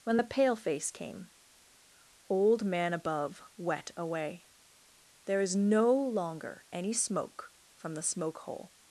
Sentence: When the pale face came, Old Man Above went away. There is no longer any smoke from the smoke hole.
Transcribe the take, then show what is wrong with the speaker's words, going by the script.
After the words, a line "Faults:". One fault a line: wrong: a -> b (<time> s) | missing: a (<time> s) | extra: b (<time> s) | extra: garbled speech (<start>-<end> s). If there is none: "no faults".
When the pale face came, Old Man Above wet away. There is no longer any smoke from the smoke hole.
Faults:
wrong: went -> wet (3.6 s)